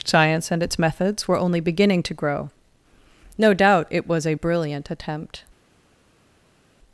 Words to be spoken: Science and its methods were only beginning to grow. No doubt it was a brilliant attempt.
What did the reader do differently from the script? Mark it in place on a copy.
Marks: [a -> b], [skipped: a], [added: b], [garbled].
Science and its methods were only beginning to grow. No doubt it was a brilliant attempt.